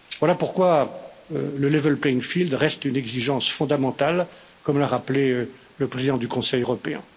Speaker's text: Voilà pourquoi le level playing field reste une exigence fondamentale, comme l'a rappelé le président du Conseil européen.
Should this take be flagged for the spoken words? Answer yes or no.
no